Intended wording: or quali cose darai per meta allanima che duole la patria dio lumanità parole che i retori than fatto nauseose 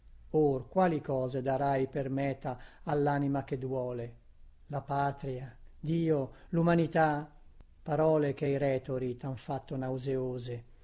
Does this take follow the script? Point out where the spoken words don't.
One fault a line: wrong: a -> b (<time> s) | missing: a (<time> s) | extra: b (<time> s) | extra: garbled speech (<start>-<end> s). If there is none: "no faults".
no faults